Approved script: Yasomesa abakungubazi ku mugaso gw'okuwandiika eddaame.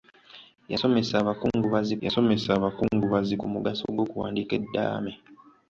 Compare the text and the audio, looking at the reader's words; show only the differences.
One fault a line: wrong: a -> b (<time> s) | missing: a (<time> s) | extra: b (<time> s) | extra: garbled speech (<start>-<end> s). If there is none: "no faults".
extra: yasomesa abakungubazi (2.0 s)